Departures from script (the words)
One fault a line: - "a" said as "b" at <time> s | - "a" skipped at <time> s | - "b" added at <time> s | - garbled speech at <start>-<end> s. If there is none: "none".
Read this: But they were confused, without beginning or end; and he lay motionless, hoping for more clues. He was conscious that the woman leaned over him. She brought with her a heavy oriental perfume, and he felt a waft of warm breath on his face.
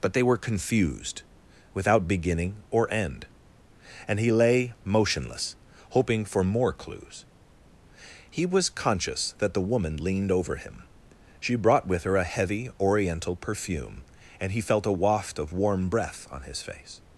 none